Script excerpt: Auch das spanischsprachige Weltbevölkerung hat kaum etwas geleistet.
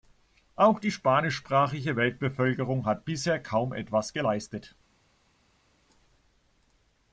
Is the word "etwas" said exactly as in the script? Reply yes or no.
yes